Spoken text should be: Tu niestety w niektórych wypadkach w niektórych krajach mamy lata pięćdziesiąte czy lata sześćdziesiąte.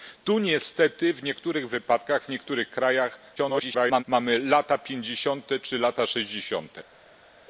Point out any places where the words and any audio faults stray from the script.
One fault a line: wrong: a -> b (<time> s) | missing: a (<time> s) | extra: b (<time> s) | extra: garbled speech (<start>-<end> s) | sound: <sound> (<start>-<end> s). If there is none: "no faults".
extra: garbled speech (3.4-4.0 s)